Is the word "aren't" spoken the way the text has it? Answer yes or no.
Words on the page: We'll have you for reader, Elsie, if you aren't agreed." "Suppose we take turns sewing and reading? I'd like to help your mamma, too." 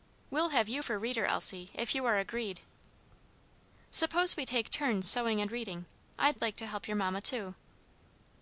no